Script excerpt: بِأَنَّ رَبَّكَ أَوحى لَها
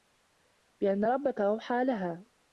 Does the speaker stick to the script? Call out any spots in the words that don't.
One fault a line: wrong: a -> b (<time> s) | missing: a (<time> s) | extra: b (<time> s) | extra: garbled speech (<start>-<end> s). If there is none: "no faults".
no faults